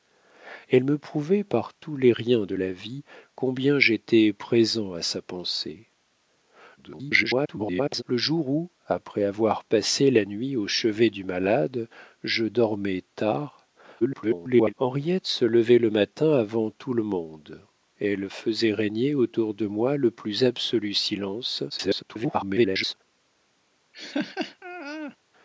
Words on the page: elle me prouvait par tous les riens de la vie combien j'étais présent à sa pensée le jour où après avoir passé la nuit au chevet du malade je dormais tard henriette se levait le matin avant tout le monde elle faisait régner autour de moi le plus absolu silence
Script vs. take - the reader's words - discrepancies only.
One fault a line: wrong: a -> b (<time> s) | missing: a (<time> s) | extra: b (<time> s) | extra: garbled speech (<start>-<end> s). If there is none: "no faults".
extra: garbled speech (6.8-8.0 s)
extra: garbled speech (14.0-14.7 s)
extra: garbled speech (21.7-22.9 s)